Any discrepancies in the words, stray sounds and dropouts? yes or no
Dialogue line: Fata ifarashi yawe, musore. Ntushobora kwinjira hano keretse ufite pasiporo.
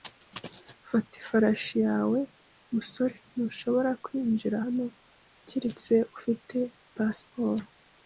no